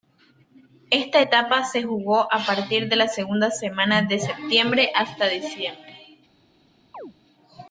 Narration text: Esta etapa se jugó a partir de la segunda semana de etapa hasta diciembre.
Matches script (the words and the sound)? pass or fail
fail